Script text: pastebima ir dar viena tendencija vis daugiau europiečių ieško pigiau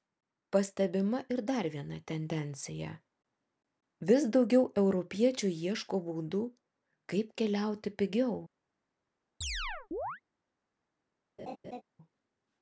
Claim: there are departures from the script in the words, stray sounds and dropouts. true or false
true